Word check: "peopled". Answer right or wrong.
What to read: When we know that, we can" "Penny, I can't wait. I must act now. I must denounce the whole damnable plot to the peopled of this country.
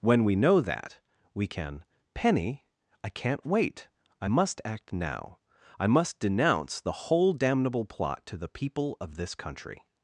wrong